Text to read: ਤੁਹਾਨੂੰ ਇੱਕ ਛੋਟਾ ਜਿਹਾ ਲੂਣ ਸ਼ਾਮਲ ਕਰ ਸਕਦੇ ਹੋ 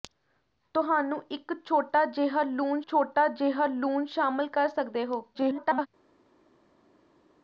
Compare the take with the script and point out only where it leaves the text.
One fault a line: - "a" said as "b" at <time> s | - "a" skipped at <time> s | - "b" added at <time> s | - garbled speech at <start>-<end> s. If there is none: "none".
- "ਛੋਟਾ ਜਿਹਾ ਲੂਣ" added at 2.9 s
- garbled speech at 5.3-5.9 s